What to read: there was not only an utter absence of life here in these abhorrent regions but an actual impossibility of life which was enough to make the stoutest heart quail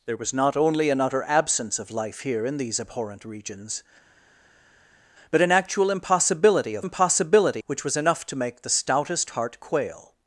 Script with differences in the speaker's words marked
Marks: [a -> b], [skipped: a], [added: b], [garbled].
there was not only an utter absence of life here in these abhorrent regions but an actual impossibility of [life -> impossibility] which was enough to make the stoutest heart quail